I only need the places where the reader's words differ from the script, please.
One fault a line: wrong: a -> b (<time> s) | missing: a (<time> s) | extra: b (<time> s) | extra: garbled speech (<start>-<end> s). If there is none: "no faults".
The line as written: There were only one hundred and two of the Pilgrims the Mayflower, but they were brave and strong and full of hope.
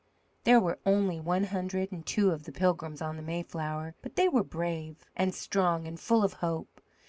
extra: on (3.0 s)